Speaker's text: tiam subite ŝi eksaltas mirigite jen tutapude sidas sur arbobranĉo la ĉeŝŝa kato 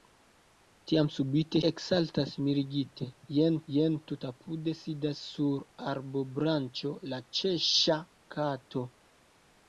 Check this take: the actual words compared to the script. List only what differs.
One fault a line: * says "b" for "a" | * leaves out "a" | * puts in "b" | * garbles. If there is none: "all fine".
* leaves out "ŝi"
* puts in "jen"